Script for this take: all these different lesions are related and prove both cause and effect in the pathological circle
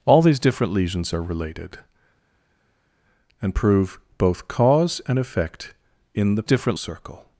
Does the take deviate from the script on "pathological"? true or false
true